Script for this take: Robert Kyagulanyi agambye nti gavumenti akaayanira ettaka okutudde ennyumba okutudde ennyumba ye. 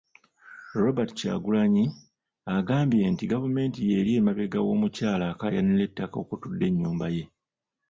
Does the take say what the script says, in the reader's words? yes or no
no